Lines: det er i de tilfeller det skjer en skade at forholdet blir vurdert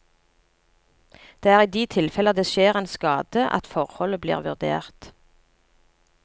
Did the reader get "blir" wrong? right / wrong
right